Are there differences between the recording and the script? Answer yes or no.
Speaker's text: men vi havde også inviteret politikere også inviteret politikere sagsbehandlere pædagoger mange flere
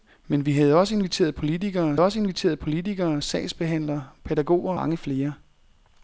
no